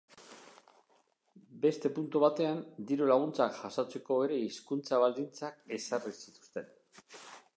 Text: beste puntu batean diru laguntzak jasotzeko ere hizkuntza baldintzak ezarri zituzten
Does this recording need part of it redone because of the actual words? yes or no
no